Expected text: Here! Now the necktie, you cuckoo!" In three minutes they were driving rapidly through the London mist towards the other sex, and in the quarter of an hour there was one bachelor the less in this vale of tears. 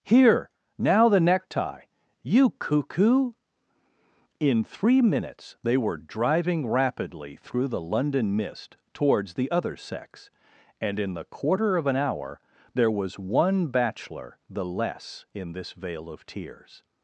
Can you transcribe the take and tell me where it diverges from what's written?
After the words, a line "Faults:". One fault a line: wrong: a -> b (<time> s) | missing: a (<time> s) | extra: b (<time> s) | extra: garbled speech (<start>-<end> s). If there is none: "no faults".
Here! Now the necktie, you cuckoo!" In three minutes they were driving rapidly through the London mist towards the other sex, and in the quarter of an hour there was one bachelor the less in this vale of tears.
Faults:
no faults